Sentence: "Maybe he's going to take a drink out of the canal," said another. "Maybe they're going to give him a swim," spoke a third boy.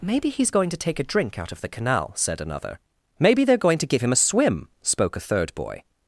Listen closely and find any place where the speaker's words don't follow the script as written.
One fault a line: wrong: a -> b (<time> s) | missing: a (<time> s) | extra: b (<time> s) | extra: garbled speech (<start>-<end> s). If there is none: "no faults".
no faults